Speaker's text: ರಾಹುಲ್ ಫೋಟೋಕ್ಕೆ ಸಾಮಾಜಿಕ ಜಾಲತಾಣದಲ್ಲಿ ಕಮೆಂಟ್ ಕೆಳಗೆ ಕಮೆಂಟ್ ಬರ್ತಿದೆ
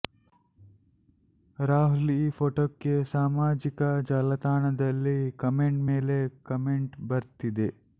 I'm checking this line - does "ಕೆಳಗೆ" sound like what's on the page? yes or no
no